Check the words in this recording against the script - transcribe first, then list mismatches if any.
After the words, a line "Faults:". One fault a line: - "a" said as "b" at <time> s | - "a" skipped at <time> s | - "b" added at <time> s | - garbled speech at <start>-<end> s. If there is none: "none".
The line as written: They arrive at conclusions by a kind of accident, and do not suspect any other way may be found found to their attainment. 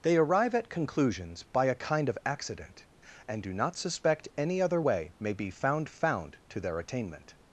They arrive at conclusions by a kind of accident, and do not suspect any other way may be found found to their attainment.
Faults:
none